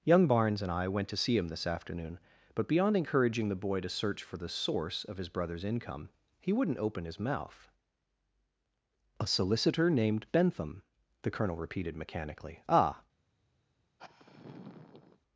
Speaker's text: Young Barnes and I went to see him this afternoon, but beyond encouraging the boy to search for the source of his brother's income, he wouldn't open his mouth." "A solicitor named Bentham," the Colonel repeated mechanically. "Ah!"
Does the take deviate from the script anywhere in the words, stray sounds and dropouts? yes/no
yes